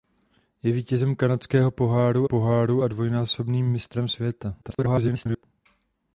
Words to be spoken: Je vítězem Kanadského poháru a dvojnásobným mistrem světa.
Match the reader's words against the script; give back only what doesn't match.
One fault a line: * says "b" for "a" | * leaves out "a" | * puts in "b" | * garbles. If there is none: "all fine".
* puts in "poháru"
* garbles